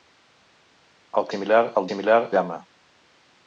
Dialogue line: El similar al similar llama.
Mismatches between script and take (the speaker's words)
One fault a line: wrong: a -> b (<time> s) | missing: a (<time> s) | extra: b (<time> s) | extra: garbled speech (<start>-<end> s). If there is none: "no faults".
no faults